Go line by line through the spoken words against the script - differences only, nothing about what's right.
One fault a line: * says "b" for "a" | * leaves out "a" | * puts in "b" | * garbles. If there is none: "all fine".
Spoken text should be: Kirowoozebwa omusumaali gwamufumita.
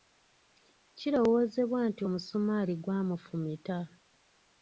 * puts in "nti"